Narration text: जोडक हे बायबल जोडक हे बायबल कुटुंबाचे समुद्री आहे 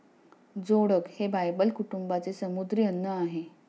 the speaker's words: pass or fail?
fail